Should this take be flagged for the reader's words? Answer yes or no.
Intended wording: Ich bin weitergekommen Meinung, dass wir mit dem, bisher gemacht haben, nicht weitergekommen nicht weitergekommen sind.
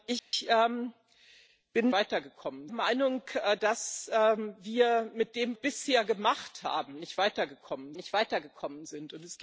no